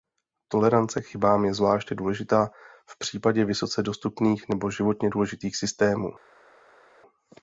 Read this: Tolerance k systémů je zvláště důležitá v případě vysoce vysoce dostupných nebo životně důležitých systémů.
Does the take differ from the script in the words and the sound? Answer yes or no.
yes